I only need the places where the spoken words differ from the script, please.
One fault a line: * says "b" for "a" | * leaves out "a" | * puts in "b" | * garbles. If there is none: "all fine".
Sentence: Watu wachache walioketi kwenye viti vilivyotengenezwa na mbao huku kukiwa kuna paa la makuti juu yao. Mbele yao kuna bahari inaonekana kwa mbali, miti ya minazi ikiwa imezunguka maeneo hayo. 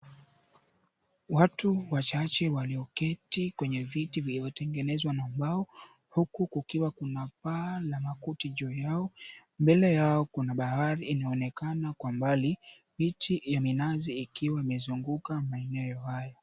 all fine